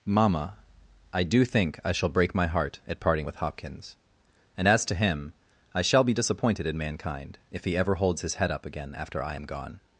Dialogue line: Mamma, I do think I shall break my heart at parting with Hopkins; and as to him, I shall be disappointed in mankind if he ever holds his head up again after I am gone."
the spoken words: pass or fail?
pass